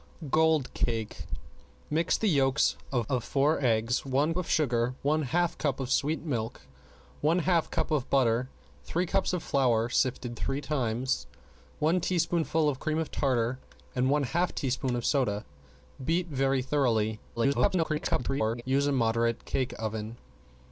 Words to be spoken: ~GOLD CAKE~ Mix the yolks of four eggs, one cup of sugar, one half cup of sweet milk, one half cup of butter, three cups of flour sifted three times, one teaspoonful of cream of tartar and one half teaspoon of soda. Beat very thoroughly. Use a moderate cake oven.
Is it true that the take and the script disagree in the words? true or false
true